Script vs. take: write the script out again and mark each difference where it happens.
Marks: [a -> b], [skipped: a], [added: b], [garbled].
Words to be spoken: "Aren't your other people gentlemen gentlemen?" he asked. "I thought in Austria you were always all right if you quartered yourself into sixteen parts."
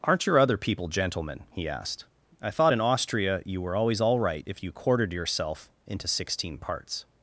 "Aren't your other people gentlemen [skipped: gentlemen?"] he asked. "I thought in Austria you were always all right if you quartered yourself into sixteen parts."